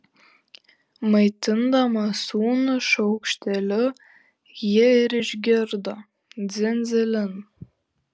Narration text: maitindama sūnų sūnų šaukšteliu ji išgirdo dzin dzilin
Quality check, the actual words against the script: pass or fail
fail